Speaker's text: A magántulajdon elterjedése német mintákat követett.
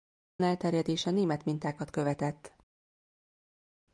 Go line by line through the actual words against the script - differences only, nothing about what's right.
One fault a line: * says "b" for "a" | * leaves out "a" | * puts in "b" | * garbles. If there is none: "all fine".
* leaves out "magántulajdon"